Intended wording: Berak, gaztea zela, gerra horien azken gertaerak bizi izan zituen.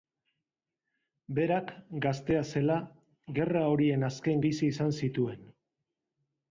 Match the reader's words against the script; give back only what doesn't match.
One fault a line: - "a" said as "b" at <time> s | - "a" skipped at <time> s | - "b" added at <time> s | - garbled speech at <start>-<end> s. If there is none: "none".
- "gertaerak" skipped at 4.4 s